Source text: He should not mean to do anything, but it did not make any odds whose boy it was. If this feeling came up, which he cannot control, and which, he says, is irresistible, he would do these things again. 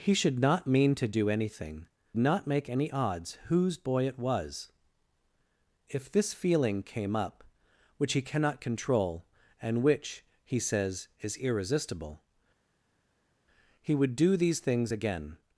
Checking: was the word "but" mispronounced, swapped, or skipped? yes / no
yes